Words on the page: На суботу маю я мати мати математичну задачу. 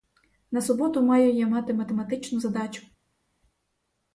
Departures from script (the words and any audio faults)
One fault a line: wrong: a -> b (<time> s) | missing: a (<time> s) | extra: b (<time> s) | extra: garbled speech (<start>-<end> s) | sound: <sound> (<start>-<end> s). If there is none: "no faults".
missing: мати (1.7 s)